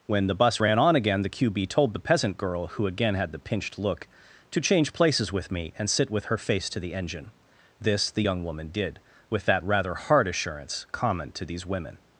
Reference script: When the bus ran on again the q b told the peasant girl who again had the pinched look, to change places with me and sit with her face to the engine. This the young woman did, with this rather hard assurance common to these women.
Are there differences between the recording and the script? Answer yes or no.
yes